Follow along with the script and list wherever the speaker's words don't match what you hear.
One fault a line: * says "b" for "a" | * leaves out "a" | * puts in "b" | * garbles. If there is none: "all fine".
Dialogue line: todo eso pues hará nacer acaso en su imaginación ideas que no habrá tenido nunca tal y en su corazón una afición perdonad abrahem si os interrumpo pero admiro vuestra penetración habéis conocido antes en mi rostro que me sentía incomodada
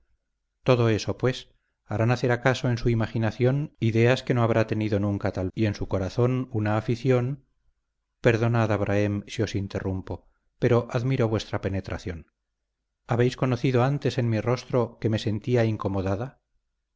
all fine